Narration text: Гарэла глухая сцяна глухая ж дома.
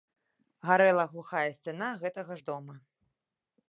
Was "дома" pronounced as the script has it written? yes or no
yes